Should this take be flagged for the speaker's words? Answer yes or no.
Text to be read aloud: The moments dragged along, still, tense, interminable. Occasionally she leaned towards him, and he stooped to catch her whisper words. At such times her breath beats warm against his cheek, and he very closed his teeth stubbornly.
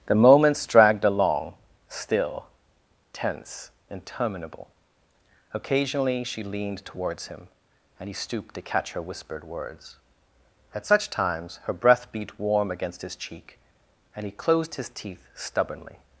yes